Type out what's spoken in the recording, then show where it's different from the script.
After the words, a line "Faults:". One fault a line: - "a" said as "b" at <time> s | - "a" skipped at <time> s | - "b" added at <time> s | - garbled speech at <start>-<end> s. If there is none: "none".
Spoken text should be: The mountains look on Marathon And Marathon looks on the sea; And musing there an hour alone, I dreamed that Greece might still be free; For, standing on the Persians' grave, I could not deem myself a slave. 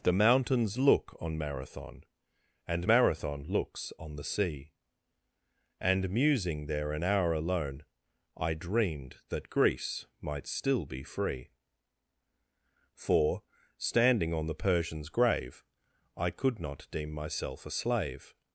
The mountains look on Marathon And Marathon looks on the sea; And musing there an hour alone, I dreamed that Greece might still be free; For, standing on the Persians' grave, I could not deem myself a slave.
Faults:
none